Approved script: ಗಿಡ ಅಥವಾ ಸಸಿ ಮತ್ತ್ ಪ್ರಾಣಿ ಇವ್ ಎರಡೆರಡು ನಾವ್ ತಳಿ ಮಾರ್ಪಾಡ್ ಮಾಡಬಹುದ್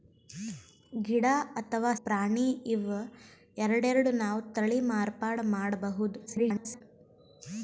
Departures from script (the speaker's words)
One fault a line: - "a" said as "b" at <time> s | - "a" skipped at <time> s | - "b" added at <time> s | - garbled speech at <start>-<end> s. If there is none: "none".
- "ಸಸಿ ಮತ್ತ್" skipped at 1.9 s
- garbled speech at 6.3-6.8 s